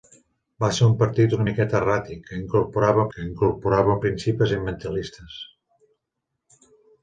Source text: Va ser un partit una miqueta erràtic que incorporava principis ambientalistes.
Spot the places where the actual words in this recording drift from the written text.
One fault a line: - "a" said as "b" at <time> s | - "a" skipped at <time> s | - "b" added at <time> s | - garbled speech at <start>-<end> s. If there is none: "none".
- "que incorporava" added at 3.1 s